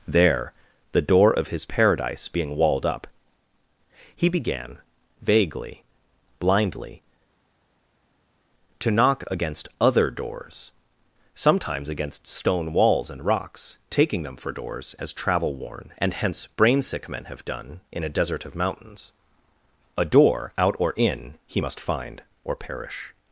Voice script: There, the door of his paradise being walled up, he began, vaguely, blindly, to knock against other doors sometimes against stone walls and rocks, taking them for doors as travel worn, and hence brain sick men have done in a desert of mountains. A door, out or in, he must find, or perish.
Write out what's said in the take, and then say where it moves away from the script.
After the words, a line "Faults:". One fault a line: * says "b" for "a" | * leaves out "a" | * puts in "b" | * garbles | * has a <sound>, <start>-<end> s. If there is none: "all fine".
There, the door of his paradise being walled up, he began, vaguely, blindly, to knock against other doors sometimes against stone walls and rocks, taking them for doors as travel worn, and hence brain sick men have done in a desert of mountains. A door, out or in, he must find, or perish.
Faults:
all fine